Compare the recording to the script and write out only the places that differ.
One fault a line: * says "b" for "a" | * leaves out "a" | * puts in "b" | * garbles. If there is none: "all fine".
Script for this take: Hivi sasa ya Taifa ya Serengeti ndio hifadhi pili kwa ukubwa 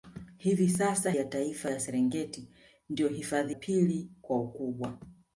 all fine